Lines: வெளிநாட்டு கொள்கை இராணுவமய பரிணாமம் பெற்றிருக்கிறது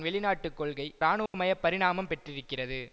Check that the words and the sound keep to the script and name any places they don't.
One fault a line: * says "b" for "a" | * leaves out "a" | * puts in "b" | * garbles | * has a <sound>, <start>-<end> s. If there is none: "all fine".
* has a dropout, 1.3-1.3 s